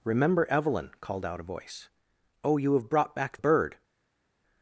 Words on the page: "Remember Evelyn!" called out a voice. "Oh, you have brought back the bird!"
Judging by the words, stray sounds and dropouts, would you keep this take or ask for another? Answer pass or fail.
fail